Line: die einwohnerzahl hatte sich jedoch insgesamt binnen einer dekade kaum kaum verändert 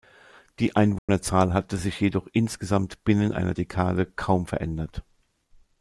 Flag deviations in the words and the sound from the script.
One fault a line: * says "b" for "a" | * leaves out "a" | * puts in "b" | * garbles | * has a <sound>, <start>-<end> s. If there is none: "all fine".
* has a dropout, 1.0-1.1 s
* leaves out "kaum"